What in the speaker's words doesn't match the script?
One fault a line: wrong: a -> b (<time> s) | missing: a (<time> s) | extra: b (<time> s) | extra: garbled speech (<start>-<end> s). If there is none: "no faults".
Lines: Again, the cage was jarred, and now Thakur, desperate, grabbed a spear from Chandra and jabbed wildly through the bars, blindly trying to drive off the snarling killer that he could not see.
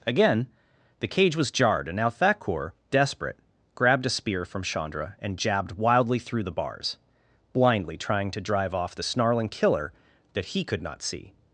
no faults